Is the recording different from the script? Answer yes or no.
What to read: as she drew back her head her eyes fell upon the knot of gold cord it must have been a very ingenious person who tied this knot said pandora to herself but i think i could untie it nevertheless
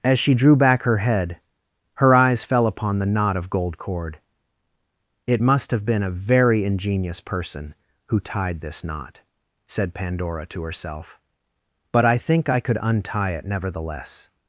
no